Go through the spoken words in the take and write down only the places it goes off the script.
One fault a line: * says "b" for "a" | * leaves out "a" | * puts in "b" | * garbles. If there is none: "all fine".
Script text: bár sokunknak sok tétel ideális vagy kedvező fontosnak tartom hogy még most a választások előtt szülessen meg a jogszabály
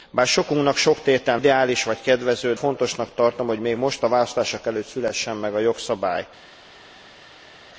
all fine